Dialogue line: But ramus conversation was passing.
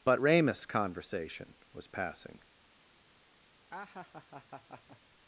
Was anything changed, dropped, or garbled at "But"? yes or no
no